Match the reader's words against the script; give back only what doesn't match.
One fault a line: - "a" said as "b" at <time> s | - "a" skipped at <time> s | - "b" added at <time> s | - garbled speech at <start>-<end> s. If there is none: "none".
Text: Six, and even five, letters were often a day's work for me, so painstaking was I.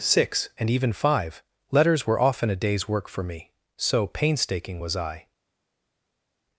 none